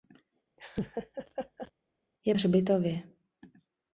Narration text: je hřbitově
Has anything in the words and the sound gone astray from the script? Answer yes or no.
yes